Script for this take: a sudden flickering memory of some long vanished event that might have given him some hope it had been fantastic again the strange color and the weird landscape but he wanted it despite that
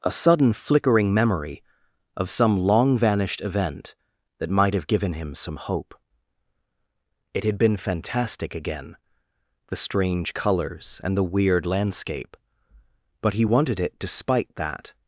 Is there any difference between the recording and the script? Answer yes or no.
yes